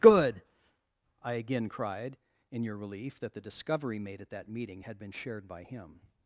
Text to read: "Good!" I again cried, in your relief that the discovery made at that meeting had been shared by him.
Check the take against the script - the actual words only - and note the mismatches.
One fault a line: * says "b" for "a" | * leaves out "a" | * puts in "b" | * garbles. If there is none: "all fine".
all fine